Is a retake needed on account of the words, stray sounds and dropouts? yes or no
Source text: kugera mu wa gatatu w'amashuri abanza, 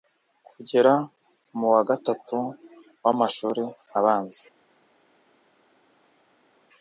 no